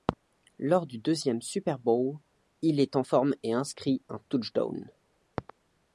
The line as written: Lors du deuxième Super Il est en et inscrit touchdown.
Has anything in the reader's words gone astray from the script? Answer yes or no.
yes